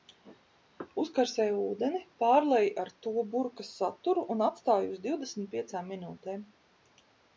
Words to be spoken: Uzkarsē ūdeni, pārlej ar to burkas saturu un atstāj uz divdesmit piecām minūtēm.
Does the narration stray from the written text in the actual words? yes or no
no